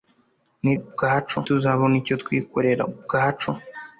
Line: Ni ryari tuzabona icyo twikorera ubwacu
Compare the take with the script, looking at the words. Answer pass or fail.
fail